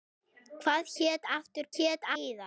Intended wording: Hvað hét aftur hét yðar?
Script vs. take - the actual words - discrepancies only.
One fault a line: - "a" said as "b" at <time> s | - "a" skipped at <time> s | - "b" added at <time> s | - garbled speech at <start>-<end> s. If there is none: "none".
none